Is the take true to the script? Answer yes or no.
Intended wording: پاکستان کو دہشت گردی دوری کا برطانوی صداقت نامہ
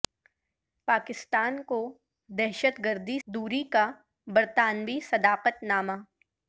yes